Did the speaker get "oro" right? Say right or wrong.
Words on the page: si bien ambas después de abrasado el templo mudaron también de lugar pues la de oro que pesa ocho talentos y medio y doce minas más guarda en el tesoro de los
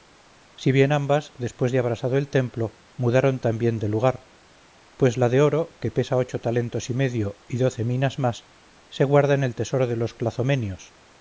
right